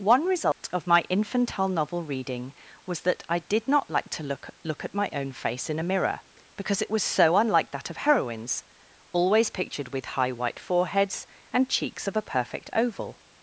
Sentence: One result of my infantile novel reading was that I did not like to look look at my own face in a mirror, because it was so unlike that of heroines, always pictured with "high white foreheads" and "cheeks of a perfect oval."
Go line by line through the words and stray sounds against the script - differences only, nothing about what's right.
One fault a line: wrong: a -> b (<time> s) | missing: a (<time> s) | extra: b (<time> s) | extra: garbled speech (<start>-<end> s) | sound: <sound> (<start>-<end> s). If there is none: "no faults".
sound: dropout (0.5-0.6 s)